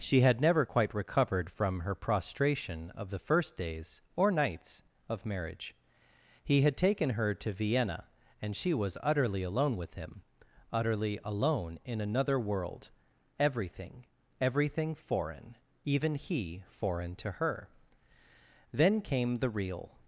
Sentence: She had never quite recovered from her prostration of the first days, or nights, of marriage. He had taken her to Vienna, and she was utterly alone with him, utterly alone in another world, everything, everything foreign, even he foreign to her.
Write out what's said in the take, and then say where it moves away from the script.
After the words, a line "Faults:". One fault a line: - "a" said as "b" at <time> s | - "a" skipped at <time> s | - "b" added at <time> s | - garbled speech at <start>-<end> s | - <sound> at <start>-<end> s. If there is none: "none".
She had never quite recovered from her prostration of the first days, or nights, of marriage. He had taken her to Vienna, and she was utterly alone with him, utterly alone in another world, everything, everything foreign, even he foreign to her. Then came the real
Faults:
- "Then came the real" added at 18.7 s